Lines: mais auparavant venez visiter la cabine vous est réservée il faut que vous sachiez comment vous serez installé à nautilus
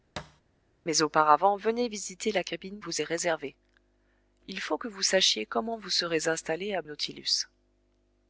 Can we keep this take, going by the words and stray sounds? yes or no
no